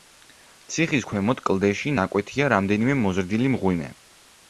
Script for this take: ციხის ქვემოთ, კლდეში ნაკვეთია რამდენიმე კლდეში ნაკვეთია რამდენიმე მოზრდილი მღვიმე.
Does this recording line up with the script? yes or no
no